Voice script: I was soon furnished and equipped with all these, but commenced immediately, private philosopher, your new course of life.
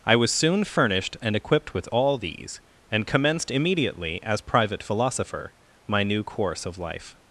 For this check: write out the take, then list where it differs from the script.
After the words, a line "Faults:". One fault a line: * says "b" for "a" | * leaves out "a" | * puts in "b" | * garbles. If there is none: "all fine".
I was soon furnished and equipped with all these, and commenced immediately, as private philosopher, my new course of life.
Faults:
* says "and" for "but"
* puts in "as"
* says "my" for "your"